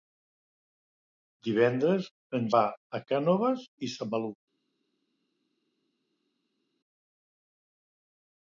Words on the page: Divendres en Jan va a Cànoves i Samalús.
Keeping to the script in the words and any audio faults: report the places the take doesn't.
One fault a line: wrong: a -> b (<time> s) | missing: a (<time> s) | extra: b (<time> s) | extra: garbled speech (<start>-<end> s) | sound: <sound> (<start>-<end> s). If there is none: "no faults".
missing: Jan (2.5 s)